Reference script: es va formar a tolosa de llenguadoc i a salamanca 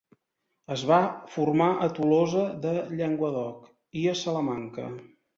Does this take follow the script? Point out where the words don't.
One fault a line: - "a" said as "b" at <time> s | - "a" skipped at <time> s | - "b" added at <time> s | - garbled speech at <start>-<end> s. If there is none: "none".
none